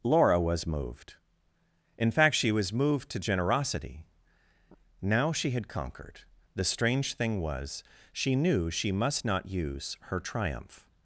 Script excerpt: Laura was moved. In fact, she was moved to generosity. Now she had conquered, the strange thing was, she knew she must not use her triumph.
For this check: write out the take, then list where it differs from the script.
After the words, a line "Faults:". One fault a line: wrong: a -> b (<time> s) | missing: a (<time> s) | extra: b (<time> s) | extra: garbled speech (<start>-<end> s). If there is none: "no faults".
Laura was moved. In fact, she was moved to generosity. Now she had conquered, the strange thing was, she knew she must not use her triumph.
Faults:
no faults